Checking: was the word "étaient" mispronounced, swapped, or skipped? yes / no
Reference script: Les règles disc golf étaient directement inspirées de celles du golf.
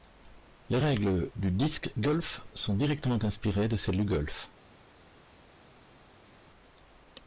yes